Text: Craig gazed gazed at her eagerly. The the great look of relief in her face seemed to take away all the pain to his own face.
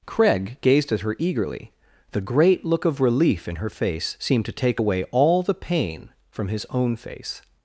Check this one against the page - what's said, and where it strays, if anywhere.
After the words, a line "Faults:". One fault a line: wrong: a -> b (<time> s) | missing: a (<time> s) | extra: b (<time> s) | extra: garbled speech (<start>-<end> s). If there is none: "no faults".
Craig gazed at her eagerly. The great look of relief in her face seemed to take away all the pain from his own face.
Faults:
missing: gazed (0.9 s)
missing: the (2.2 s)
wrong: to -> from (6.3 s)